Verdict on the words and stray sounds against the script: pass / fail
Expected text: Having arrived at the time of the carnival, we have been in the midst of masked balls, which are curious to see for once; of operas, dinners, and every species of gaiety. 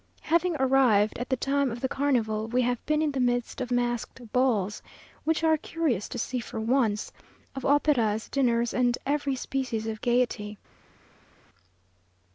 pass